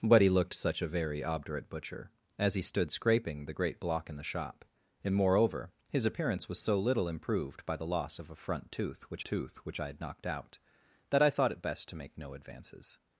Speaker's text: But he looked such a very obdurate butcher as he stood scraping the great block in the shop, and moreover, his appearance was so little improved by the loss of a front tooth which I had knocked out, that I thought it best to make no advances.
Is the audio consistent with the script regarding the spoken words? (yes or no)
no